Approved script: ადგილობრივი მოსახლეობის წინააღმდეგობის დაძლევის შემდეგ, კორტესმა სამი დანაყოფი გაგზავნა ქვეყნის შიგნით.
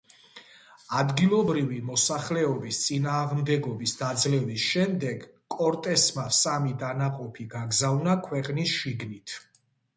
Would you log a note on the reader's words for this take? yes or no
no